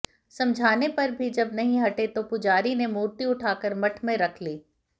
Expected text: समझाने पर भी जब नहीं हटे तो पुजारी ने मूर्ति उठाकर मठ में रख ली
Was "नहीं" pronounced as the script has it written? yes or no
yes